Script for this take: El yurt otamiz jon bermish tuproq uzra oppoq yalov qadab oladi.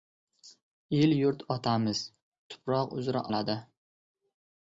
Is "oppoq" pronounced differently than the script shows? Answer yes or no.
yes